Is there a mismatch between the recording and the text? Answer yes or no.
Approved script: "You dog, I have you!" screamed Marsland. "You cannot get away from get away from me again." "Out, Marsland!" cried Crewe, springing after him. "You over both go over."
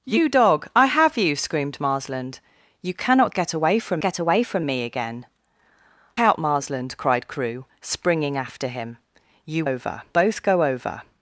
no